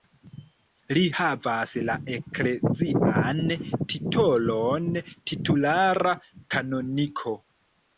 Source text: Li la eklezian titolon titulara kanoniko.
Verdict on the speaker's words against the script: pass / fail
fail